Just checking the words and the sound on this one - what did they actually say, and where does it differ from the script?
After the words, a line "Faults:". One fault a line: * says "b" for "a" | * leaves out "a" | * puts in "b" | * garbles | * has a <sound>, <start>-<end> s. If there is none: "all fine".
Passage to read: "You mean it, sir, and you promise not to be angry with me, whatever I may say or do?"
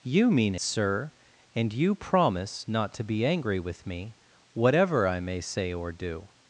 "You mean sir, and you promise not to be angry with me, whatever I may say or do?"
Faults:
* leaves out "it"